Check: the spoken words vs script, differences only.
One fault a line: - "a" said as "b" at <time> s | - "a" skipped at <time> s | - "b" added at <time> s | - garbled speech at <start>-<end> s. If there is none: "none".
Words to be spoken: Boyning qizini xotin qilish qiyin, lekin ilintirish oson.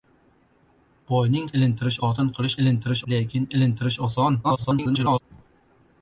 - "qizini" said as "ilintirish" at 1.6 s
- "qiyin" said as "ilintirish" at 2.7 s
- garbled speech at 4.4-5.2 s